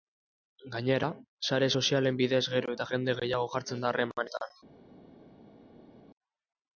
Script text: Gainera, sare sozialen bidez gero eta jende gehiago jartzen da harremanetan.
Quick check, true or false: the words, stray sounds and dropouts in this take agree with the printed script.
true